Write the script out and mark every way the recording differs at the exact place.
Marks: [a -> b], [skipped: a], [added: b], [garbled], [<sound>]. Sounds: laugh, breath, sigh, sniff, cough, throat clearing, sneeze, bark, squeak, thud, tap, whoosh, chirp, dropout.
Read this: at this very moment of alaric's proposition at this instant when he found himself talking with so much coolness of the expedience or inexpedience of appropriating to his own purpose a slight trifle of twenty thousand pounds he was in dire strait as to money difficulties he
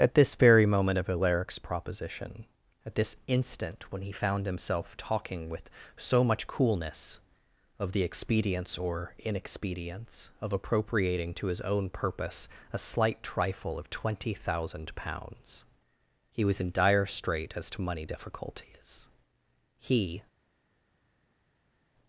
at this very moment of alaric's proposition at this instant when he found himself talking with so much coolness of the expedience or inexpedience of appropriating to his own purpose a slight trifle of twenty thousand pounds he was in dire strait as to money difficulties he